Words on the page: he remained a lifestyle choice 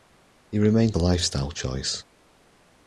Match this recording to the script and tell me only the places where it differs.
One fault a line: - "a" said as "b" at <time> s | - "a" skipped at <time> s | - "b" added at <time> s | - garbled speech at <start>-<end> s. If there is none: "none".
none